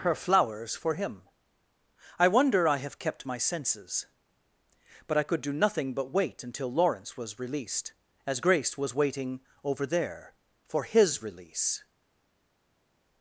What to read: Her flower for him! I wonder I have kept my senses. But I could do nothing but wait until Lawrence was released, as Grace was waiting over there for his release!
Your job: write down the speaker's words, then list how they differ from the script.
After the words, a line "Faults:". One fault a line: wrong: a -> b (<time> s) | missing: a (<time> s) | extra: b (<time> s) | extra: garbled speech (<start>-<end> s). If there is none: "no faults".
Her flowers for him! I wonder I have kept my senses. But I could do nothing but wait until Lawrence was released, as Grace was waiting over there for his release!
Faults:
wrong: flower -> flowers (0.1 s)